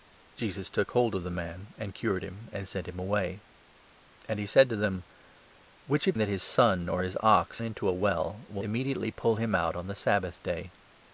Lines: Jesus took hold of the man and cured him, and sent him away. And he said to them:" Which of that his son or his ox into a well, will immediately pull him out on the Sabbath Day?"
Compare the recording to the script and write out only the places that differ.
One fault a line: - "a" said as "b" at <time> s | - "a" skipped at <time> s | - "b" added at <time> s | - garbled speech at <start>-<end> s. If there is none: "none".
none